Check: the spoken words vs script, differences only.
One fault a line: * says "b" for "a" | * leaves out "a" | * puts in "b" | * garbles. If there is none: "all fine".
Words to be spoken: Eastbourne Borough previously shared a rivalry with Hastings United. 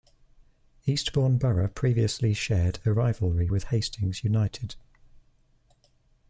all fine